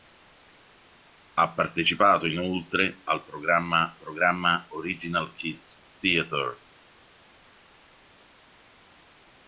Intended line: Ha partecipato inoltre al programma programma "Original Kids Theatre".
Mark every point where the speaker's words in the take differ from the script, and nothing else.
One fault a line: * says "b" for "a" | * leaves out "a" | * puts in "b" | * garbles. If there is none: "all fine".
all fine